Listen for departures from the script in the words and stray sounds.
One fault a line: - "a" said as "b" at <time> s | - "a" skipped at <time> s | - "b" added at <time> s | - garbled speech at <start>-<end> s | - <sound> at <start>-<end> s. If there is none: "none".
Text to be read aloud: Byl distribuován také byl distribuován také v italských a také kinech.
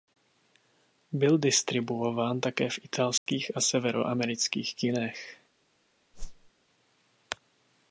- "byl distribuován také" skipped at 2.7 s
- dropout at 3.2-3.3 s
- "také" said as "severoamerických" at 3.6 s
- whoosh at 6.1-6.5 s